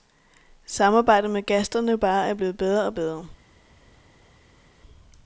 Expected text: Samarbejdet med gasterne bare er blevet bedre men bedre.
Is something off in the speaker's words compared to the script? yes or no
yes